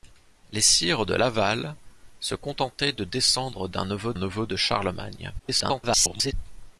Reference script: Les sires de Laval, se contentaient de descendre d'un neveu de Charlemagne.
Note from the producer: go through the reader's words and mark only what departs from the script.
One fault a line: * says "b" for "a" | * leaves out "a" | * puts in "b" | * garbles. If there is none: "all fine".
* puts in "neveu"
* garbles